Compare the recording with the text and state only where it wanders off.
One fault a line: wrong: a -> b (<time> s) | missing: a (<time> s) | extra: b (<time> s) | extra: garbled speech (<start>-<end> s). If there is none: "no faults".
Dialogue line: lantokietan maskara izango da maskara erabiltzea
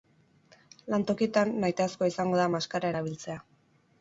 wrong: maskara -> nahitaezkoa (1.6 s)